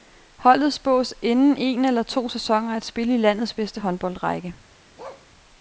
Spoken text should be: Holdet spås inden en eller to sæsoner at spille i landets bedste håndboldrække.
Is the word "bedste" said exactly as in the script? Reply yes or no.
yes